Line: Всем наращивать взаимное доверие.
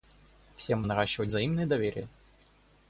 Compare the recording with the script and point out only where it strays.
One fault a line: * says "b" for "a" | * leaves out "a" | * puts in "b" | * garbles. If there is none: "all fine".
all fine